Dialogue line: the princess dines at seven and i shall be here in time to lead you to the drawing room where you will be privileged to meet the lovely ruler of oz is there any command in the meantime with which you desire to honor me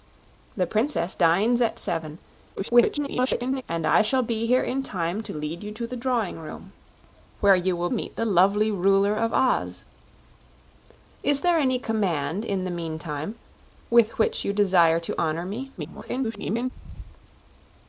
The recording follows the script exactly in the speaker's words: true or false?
false